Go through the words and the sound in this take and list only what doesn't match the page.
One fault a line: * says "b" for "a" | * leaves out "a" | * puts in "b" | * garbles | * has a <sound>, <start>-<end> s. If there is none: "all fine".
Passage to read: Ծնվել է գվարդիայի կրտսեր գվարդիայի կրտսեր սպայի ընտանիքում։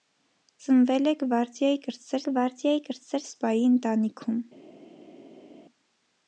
all fine